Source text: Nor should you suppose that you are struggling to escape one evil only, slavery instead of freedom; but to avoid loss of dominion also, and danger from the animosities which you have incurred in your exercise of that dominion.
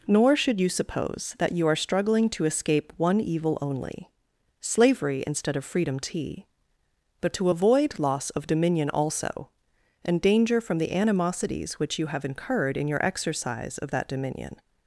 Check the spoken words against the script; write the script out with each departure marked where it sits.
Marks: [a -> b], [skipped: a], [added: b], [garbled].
Nor should you suppose that you are struggling to escape one evil only, slavery instead of freedom; [added: tea] but to avoid loss of dominion also, and danger from the animosities which you have incurred in your exercise of that dominion.